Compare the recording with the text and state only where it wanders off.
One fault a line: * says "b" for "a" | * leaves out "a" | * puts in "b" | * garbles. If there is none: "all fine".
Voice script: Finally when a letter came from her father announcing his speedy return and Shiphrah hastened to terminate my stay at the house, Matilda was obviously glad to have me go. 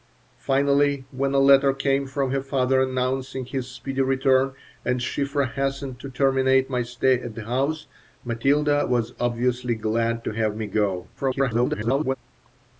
* garbles